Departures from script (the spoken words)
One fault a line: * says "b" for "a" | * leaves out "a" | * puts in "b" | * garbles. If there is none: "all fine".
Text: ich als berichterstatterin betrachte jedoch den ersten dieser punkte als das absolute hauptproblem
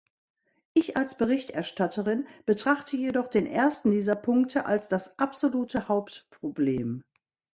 all fine